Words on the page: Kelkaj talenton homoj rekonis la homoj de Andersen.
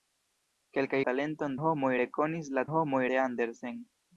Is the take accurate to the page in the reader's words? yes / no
yes